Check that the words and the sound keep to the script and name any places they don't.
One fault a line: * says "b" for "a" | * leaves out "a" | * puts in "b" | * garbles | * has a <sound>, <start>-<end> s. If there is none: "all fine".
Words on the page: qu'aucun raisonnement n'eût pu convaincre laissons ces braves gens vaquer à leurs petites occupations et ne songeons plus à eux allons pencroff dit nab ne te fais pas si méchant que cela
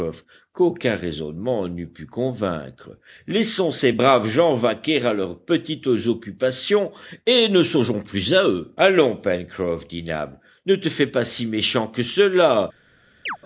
* has a chirp, 13.3-13.4 s